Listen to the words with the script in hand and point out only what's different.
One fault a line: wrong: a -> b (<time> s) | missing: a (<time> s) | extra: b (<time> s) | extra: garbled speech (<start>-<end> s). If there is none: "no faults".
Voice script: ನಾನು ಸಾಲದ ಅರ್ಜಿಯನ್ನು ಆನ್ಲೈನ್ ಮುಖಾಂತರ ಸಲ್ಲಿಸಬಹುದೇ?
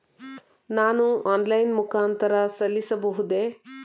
missing: ಸಾಲದ ಅರ್ಜಿಯನ್ನು (1.0 s)